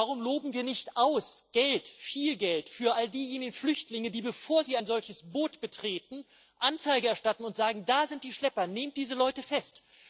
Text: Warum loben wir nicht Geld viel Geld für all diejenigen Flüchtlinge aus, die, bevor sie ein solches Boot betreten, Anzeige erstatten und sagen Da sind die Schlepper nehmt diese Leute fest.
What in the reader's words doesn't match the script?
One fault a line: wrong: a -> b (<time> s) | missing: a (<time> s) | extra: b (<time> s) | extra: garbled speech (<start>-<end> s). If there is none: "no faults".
no faults